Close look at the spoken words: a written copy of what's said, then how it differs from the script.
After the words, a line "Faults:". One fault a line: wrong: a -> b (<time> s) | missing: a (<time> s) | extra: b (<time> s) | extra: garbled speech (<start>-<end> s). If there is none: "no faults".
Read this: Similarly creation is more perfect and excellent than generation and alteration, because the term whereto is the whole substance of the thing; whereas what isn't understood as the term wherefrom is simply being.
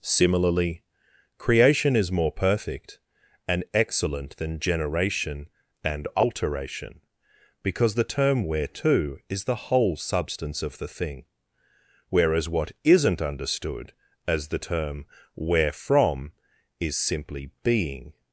Similarly creation is more perfect and excellent than generation and alteration, because the term whereto is the whole substance of the thing; whereas what isn't understood as the term wherefrom is simply being.
Faults:
no faults